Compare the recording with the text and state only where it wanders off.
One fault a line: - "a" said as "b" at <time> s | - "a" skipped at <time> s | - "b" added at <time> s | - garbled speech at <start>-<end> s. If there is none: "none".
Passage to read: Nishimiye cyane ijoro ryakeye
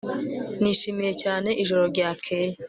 none